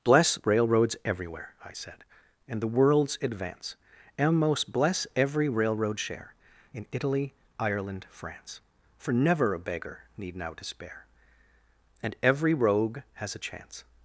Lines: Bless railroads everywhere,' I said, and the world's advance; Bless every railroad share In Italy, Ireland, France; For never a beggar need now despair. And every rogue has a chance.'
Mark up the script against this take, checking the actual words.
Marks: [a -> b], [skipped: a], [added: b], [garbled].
Bless railroads everywhere,' I said, and the world's advance; [added: and most] Bless every railroad share In Italy, Ireland, France; For never a beggar need now despair. And every rogue has a chance.'